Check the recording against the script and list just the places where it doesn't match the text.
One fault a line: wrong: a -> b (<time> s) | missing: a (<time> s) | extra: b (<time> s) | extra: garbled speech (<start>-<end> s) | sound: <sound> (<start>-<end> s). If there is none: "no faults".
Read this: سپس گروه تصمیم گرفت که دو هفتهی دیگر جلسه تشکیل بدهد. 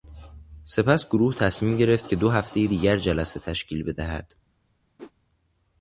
sound: whoosh (5.0-5.1 s)